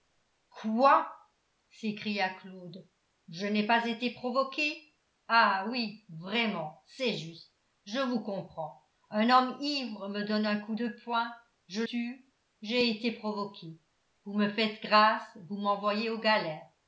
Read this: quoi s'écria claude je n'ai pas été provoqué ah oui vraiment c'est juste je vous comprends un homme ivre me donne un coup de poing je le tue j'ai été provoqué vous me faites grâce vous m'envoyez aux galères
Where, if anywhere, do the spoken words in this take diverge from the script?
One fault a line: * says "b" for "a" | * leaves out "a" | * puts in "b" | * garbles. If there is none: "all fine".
* leaves out "le"